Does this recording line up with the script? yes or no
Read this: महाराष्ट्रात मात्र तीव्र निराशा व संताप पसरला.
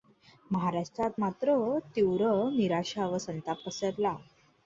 yes